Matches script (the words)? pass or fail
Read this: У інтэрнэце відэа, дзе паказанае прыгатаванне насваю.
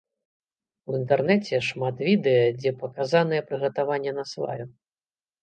fail